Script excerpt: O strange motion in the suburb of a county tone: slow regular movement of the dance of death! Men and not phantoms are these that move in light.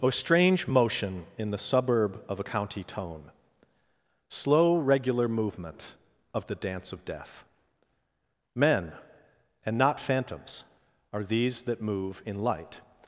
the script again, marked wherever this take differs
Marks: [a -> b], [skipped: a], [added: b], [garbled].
O strange motion in the suburb of a county tone: slow regular movement of the dance of death! Men and not phantoms are these that move in light.